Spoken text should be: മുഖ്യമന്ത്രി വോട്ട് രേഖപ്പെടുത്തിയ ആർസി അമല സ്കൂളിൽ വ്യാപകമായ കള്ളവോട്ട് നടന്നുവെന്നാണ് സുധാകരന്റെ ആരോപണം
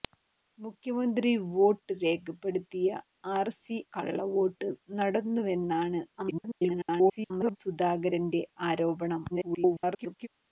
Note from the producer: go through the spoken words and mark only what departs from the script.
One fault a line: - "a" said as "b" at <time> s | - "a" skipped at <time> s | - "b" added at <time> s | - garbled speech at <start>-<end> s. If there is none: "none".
- "അമല സ്കൂളിൽ വ്യാപകമായ" skipped at 3.8 s
- garbled speech at 6.2-7.6 s
- garbled speech at 9.3-10.3 s